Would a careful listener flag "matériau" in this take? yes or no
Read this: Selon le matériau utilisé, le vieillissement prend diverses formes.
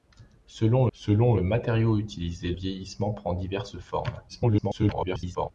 no